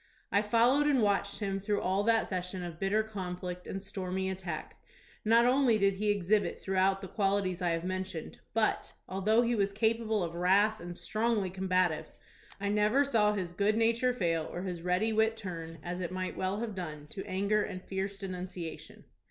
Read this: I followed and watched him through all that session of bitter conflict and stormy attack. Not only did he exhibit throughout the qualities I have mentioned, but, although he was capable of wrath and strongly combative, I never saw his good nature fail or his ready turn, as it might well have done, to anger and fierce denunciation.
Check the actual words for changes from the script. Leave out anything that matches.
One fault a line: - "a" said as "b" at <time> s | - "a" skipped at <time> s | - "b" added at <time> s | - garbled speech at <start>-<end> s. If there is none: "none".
- "wit" added at 15.1 s